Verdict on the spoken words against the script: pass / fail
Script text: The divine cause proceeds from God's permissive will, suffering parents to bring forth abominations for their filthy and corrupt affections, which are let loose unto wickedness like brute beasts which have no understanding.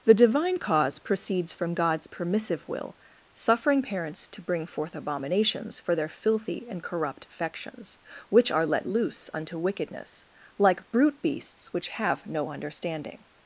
pass